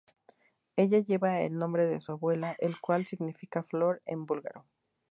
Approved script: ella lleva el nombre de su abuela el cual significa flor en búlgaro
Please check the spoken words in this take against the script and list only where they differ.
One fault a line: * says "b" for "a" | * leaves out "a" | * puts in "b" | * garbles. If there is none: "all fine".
all fine